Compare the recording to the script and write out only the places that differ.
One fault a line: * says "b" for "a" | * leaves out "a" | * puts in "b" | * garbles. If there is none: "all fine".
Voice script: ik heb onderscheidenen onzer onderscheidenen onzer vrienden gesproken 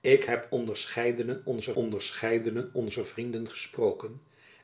all fine